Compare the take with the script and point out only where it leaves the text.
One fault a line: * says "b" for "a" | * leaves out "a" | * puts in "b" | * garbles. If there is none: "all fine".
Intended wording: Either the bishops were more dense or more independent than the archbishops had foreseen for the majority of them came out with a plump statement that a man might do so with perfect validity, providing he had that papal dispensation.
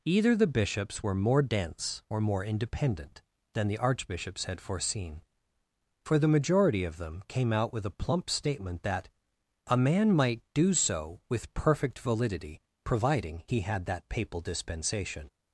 all fine